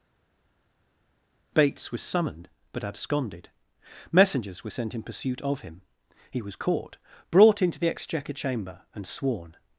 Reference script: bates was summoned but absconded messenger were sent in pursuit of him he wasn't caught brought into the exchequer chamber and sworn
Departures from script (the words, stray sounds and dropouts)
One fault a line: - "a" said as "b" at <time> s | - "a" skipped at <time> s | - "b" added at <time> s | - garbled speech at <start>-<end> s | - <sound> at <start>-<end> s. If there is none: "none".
- "messenger" said as "messengers" at 4.1 s
- "wasn't" said as "was" at 6.4 s